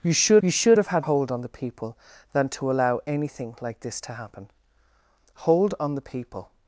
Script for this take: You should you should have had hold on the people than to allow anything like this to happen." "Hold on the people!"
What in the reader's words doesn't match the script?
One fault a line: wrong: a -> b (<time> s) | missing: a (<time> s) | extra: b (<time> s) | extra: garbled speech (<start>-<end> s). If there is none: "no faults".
no faults